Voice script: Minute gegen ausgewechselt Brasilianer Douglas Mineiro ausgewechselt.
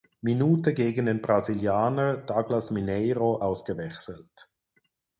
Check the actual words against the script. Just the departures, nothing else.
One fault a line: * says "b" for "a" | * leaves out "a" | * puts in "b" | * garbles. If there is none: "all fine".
* says "den" for "ausgewechselt"